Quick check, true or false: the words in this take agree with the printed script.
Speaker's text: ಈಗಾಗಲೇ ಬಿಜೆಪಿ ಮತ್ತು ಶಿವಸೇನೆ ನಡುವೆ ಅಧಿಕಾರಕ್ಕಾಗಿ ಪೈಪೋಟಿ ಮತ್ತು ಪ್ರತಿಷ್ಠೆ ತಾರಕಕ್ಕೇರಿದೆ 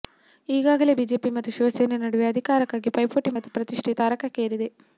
true